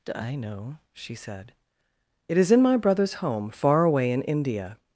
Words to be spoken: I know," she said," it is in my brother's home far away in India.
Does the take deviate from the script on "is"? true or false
false